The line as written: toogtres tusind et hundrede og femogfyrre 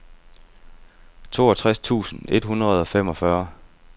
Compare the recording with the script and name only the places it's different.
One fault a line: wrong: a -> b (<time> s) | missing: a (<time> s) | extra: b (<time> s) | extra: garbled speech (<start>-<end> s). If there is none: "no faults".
no faults